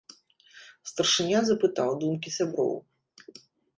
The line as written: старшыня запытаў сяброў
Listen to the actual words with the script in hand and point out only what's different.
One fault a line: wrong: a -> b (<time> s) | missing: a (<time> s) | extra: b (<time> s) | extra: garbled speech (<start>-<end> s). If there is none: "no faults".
extra: думкі (2.0 s)